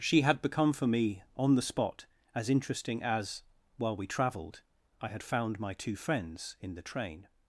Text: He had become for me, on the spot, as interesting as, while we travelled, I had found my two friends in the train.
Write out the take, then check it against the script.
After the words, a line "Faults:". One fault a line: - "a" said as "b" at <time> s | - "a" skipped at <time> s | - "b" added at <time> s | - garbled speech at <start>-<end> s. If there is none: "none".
She had become for me, on the spot, as interesting as, while we travelled, I had found my two friends in the train.
Faults:
- "He" said as "She" at 0.0 s